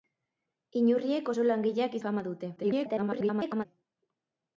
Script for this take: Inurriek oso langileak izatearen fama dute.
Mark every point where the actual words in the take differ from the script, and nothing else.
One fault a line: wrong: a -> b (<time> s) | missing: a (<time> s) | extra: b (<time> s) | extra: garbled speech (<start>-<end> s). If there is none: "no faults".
missing: izatearen (2.0 s)
extra: garbled speech (2.6-3.7 s)